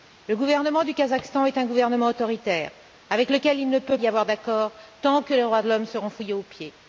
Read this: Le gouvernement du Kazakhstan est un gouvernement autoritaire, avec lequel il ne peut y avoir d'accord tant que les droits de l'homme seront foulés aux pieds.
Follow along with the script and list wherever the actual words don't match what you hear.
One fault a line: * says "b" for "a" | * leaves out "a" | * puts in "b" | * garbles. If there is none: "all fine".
all fine